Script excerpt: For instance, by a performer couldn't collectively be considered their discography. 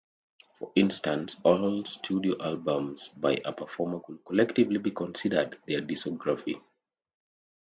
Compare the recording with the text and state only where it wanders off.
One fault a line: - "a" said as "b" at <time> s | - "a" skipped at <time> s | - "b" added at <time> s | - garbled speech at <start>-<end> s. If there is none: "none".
- "all studio albums" added at 1.4 s
- "couldn't" said as "could" at 4.0 s